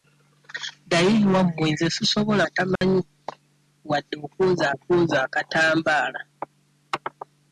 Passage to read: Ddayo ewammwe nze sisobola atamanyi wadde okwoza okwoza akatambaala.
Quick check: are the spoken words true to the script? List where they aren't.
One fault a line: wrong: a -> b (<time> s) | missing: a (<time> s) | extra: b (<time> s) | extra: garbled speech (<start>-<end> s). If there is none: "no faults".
no faults